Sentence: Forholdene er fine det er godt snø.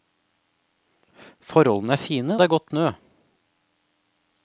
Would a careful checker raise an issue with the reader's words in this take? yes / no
no